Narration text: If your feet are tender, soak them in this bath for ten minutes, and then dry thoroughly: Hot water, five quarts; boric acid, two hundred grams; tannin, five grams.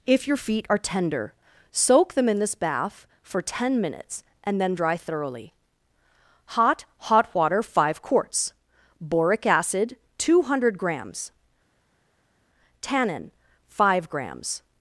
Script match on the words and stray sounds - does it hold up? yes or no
no